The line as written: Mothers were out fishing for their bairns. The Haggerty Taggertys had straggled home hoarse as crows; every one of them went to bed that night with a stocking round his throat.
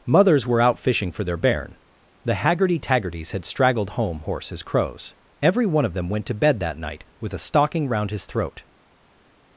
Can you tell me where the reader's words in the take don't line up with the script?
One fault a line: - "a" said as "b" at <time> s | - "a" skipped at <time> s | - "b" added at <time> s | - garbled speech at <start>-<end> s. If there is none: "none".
- "bairns" said as "bairn" at 1.4 s